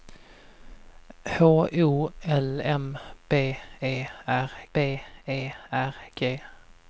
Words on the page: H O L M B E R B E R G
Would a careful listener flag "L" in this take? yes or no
no